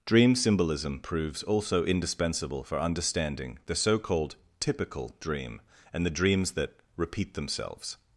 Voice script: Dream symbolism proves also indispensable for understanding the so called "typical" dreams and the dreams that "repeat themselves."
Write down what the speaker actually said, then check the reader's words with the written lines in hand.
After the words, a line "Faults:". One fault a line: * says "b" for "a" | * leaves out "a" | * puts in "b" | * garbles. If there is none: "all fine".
Dream symbolism proves also indispensable for understanding the so called "typical" dream and the dreams that "repeat themselves."
Faults:
* says "dream" for "dreams"